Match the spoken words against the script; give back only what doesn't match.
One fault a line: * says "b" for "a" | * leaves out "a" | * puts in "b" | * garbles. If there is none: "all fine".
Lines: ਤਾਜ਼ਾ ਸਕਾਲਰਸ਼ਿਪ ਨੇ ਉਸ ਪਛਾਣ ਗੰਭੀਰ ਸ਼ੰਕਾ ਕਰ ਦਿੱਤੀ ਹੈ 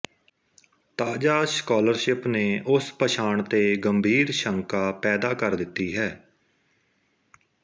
* puts in "ਤੇ"
* puts in "ਪੈਦਾ"